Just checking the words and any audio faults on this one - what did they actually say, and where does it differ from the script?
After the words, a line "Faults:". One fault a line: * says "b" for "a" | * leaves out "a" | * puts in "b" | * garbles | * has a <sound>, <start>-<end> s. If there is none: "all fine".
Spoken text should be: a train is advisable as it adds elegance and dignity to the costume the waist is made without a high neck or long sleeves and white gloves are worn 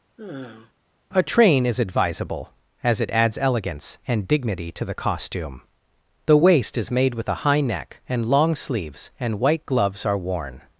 a train is advisable as it adds elegance and dignity to the costume the waist is made with a high neck and long sleeves and white gloves are worn
Faults:
* has a sigh, 0.2-0.7 s
* says "with" for "without"
* says "and" for "or"